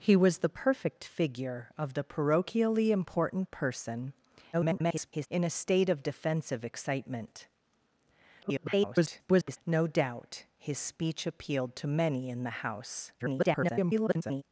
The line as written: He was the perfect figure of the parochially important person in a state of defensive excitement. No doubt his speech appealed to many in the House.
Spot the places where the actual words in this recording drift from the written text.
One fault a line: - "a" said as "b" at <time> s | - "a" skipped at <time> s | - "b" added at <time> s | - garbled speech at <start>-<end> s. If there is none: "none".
- garbled speech at 4.5-5.3 s
- garbled speech at 8.4-9.6 s
- garbled speech at 13.2-14.4 s